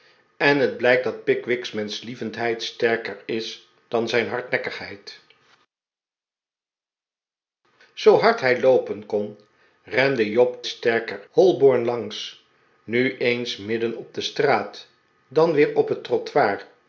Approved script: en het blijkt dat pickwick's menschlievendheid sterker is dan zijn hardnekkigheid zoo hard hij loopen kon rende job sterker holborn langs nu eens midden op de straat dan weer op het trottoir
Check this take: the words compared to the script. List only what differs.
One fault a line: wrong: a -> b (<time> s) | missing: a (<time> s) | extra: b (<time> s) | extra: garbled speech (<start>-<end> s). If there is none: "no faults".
no faults